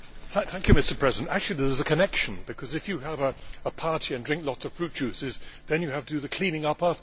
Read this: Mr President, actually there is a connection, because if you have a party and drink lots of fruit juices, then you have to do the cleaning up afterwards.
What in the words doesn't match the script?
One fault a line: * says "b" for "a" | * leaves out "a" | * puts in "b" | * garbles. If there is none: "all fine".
all fine